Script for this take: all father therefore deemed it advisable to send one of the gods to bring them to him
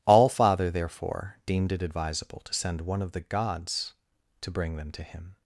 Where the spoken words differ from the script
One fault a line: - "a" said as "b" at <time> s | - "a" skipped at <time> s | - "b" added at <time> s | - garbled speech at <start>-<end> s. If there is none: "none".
none